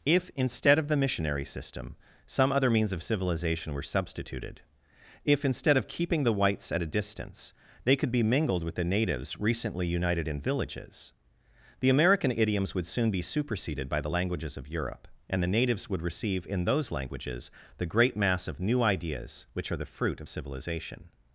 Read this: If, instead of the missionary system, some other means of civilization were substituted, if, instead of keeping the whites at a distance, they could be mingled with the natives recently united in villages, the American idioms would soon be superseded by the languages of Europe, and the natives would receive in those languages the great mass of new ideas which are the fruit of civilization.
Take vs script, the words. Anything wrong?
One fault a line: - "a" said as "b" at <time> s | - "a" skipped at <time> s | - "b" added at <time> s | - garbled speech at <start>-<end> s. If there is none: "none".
none